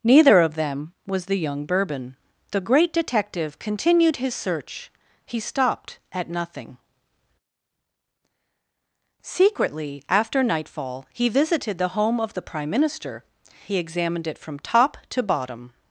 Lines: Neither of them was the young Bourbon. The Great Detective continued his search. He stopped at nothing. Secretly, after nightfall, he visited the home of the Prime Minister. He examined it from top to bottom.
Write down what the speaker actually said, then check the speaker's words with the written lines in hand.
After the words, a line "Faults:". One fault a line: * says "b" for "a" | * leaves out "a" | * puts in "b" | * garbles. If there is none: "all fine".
Neither of them was the young Bourbon. The Great Detective continued his search. He stopped at nothing. Secretly, after nightfall, he visited the home of the Prime Minister. He examined it from top to bottom.
Faults:
all fine